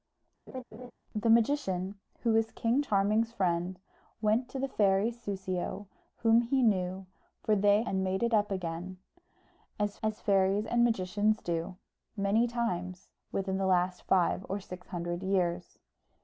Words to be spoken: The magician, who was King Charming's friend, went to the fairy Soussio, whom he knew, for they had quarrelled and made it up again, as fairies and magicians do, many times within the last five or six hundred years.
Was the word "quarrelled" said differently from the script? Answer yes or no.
yes